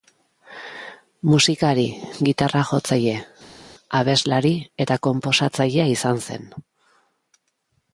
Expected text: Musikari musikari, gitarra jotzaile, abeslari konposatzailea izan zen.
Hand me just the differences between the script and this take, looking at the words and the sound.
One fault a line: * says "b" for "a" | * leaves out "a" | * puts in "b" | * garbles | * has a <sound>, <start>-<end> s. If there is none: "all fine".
* leaves out "musikari"
* puts in "eta"